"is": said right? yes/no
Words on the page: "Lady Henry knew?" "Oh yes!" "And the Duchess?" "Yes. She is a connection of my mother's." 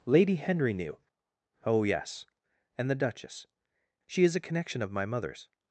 yes